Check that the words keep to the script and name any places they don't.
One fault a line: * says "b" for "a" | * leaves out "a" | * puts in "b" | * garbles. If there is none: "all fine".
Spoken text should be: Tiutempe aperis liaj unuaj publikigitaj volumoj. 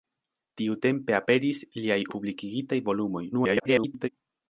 * leaves out "unuaj"
* garbles